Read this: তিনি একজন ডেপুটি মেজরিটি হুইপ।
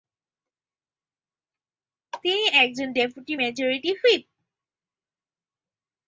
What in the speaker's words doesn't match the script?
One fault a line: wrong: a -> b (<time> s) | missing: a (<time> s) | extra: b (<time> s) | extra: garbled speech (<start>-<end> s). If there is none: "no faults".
no faults